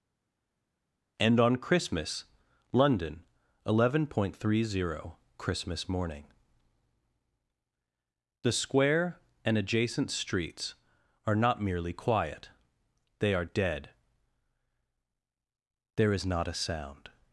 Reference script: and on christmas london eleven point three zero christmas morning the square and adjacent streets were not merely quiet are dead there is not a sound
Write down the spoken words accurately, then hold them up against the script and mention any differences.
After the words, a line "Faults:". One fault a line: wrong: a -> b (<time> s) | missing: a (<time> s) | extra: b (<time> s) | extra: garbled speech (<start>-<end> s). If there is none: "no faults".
and on christmas london eleven point three zero christmas morning the square and adjacent streets are not merely quiet they are dead there is not a sound
Faults:
wrong: were -> are (11.3 s)
extra: they (13.2 s)